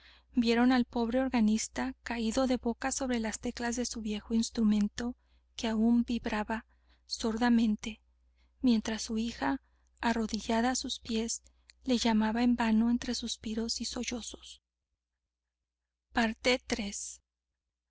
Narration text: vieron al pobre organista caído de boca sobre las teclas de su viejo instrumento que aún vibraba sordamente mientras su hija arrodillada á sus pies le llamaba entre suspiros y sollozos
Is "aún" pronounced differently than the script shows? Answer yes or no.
no